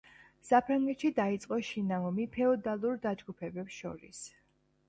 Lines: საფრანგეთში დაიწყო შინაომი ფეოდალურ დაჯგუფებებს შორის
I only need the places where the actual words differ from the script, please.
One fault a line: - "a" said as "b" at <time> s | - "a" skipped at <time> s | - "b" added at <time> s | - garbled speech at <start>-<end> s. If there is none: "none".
none